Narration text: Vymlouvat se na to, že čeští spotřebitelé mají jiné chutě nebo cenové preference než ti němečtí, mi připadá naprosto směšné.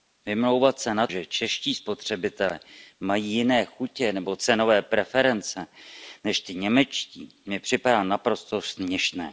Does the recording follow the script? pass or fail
fail